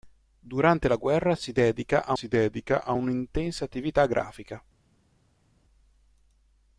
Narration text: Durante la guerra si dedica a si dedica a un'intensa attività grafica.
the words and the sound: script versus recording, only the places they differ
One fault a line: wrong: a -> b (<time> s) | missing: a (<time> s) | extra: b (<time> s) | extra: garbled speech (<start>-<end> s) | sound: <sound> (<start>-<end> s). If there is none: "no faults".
no faults